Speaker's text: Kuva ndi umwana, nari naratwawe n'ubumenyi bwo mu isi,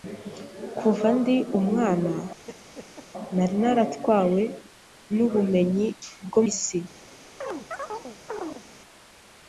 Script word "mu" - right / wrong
wrong